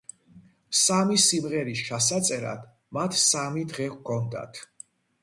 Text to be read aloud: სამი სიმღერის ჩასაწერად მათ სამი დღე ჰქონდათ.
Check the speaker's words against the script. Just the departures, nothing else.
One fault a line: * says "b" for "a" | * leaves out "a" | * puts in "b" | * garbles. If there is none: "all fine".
all fine